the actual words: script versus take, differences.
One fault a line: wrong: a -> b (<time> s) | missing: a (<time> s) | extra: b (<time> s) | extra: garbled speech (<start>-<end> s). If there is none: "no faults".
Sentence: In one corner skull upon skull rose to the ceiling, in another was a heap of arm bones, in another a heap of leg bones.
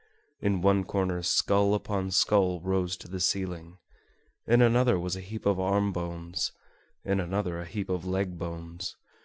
no faults